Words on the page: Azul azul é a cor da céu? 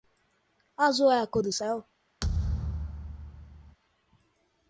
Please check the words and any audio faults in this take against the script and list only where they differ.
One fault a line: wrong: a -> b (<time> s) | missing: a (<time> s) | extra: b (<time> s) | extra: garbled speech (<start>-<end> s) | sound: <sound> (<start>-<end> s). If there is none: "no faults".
missing: azul (1.1 s)
wrong: da -> do (1.4 s)
sound: thud (2.2-3.8 s)